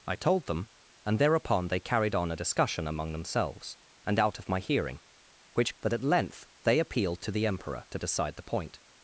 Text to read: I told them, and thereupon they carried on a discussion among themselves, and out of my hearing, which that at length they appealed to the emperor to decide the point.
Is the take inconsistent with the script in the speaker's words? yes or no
no